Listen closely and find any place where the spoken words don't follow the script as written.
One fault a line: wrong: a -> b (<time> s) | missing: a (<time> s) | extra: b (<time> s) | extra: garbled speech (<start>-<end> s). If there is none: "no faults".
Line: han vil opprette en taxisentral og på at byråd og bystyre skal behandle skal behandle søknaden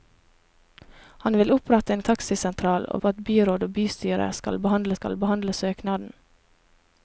no faults